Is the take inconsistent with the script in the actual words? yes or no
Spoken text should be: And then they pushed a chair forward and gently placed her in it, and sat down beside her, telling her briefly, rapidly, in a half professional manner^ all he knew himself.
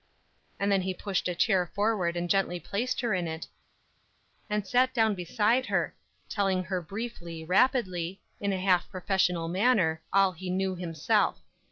yes